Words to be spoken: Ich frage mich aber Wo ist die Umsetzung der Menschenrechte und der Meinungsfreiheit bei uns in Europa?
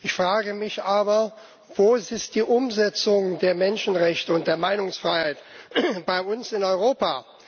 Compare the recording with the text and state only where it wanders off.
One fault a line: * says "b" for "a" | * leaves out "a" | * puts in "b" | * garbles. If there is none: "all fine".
all fine